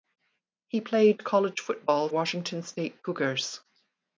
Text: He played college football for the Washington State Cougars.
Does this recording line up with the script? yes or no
no